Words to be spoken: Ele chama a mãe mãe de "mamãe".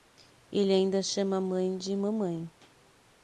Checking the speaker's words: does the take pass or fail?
fail